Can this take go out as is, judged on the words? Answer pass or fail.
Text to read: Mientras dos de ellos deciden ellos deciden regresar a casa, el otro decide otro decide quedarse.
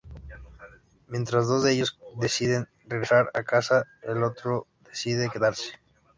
fail